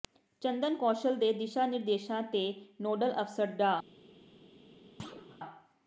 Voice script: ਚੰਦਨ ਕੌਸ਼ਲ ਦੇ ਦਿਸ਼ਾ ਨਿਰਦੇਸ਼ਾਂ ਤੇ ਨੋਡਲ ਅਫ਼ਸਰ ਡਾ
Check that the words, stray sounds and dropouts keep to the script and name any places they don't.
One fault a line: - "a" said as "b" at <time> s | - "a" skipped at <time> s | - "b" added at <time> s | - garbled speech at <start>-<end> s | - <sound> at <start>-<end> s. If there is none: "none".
- thud at 5.0-5.4 s